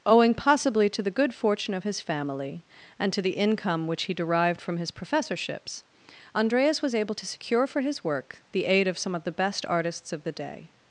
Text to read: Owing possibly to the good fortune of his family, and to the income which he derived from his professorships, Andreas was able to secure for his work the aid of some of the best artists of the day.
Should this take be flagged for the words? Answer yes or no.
no